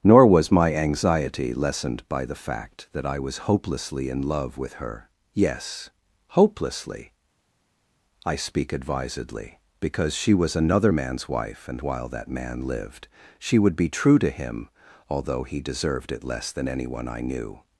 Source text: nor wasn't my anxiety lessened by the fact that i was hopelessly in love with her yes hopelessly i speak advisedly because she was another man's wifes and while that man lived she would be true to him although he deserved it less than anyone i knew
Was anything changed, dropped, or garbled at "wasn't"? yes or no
yes